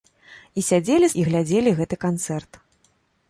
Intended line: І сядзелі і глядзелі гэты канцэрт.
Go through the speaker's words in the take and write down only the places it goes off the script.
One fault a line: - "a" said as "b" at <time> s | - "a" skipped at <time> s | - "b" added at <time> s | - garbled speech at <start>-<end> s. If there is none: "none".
none